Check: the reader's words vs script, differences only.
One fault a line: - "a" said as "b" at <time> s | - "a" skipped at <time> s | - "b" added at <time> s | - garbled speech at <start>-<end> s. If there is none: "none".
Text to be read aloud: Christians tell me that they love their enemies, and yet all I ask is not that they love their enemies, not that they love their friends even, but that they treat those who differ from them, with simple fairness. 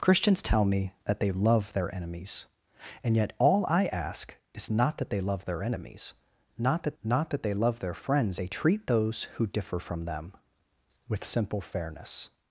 - "not that" added at 7.0 s
- "even but that" skipped at 8.4 s